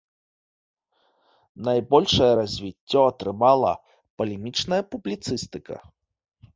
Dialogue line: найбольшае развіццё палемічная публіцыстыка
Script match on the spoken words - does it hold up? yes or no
no